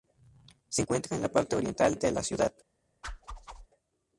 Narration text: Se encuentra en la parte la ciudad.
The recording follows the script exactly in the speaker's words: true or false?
false